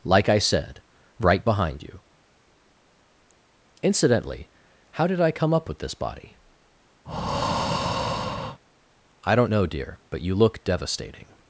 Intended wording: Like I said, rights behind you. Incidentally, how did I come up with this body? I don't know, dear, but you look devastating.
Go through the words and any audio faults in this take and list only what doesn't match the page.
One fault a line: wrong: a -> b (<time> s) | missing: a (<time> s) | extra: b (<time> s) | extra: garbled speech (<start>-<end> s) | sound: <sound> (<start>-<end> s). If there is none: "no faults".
wrong: rights -> right (1.2 s)
sound: breath (7.0-8.6 s)